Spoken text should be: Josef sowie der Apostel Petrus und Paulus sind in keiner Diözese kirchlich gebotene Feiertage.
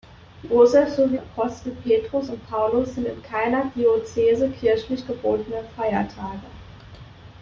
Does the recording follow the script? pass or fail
fail